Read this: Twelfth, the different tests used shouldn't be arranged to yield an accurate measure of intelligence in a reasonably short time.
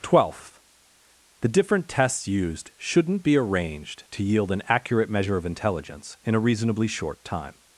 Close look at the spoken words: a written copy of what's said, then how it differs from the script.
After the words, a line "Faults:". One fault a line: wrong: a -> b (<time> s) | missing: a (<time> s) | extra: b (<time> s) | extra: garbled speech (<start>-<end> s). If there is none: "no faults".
Twelfth, the different tests used shouldn't be arranged to yield an accurate measure of intelligence in a reasonably short time.
Faults:
no faults